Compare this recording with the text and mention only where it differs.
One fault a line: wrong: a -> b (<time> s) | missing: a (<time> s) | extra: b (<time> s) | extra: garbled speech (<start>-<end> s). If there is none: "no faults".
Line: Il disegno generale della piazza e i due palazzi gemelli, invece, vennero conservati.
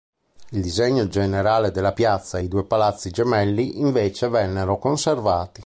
no faults